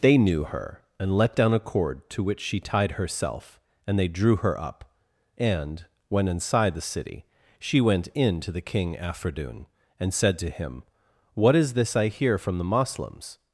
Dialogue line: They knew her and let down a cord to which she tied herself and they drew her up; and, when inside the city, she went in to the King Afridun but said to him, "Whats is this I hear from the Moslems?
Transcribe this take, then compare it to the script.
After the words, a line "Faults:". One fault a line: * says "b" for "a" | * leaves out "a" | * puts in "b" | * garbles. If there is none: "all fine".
They knew her and let down a cord to which she tied herself and they drew her up; and, when inside the city, she went in to the King Afridun and said to him, "What is this I hear from the Moslems?
Faults:
* says "and" for "but"
* says "What" for "Whats"